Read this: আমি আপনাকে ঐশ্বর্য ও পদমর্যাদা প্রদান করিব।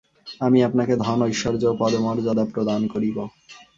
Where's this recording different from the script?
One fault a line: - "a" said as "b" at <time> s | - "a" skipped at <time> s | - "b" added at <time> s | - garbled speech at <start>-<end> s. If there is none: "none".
- "ধন" added at 1.0 s